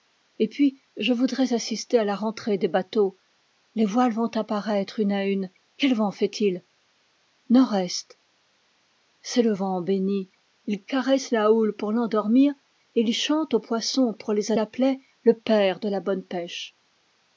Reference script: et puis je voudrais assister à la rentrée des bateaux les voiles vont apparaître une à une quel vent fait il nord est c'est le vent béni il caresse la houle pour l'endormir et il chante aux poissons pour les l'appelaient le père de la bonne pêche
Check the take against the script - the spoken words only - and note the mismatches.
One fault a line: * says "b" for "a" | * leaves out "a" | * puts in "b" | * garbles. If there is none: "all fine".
all fine